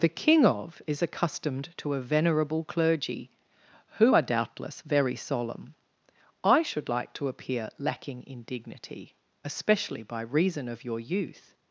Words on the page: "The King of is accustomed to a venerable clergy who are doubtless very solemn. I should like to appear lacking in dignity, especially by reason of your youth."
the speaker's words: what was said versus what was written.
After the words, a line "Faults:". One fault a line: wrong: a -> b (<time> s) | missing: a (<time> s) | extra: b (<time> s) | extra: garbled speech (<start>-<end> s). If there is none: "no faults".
"The King of is accustomed to a venerable clergy who are doubtless very solemn. I should like to appear lacking in dignity, especially by reason of your youth."
Faults:
no faults